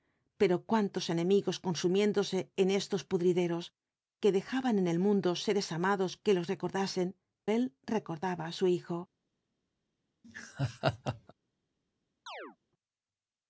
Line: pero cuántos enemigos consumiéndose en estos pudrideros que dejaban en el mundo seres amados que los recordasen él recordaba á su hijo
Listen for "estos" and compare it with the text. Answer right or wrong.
right